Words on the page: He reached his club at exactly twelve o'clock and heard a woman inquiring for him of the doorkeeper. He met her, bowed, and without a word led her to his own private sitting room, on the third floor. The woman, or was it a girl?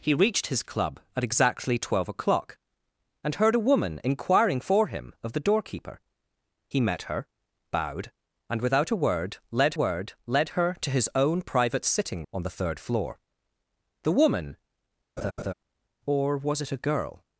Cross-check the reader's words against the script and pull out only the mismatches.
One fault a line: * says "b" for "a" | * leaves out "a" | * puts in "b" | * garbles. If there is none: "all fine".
* puts in "word led"
* leaves out "room"